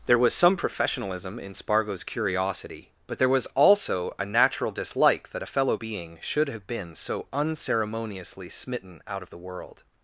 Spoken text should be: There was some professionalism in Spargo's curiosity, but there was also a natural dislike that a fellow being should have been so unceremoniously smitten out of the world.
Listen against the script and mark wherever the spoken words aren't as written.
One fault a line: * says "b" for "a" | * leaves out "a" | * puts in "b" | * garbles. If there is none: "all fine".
all fine